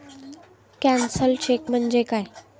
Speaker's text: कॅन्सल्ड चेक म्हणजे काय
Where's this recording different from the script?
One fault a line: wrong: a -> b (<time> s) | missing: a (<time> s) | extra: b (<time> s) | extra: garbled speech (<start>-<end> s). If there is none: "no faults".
no faults